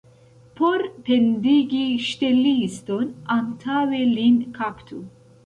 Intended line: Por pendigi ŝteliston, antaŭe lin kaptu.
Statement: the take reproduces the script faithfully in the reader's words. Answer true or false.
true